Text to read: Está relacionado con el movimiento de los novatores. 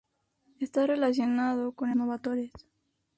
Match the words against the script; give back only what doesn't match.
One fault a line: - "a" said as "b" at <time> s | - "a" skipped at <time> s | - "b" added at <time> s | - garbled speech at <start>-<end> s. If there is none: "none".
- "movimiento de los" skipped at 2.0 s